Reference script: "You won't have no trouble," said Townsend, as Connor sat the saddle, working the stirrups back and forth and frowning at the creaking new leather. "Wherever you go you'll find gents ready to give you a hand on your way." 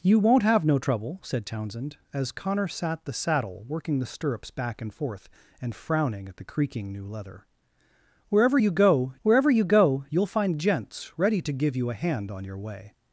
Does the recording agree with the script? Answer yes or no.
no